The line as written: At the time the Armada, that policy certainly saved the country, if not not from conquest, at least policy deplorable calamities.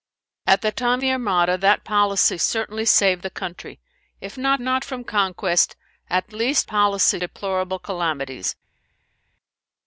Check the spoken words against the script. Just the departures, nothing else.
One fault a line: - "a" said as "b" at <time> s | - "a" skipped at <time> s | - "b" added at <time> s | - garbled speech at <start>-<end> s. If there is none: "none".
none